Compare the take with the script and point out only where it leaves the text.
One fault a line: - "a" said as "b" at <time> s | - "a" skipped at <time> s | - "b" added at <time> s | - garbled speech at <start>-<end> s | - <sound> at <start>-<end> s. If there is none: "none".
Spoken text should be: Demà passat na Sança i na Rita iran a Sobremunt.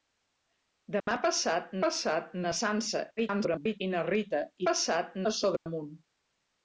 - dropout at 1.0-1.1 s
- "passat" added at 1.8 s
- garbled speech at 3.2-3.8 s
- "iran" said as "passat" at 4.7 s
- dropout at 5.6-5.7 s